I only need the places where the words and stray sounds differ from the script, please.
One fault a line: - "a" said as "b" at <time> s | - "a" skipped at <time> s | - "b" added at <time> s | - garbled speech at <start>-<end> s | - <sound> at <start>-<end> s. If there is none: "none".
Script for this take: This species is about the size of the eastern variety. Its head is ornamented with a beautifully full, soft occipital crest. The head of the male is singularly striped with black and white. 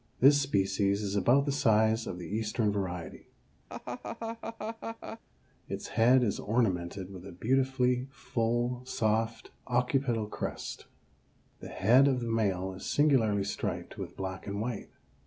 - laugh at 3.7-5.2 s